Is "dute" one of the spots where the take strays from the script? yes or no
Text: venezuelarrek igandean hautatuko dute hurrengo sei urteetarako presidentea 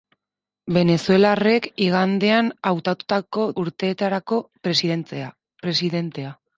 yes